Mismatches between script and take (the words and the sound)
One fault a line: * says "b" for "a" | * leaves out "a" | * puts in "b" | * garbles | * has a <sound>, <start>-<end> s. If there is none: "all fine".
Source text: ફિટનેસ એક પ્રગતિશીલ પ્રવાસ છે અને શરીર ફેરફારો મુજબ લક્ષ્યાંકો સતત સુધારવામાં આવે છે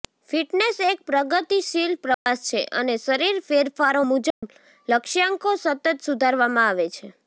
* has a dropout, 2.1-2.3 s
* has a dropout, 4.3-4.4 s